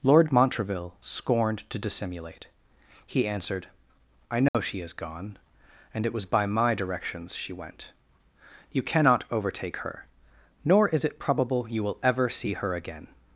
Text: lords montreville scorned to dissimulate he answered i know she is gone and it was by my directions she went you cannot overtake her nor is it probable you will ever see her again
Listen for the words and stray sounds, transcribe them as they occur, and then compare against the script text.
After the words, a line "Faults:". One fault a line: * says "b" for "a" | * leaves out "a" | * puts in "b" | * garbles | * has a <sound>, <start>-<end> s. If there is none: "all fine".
lord montreville scorned to dissimulate he answered i know she is gone and it was by my directions she went you cannot overtake her nor is it probable you will ever see her again
Faults:
* says "lord" for "lords"
* has a dropout, 4.5-4.5 s